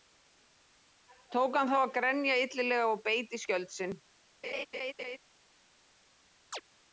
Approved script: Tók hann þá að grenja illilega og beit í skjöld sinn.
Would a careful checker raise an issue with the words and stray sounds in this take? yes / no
yes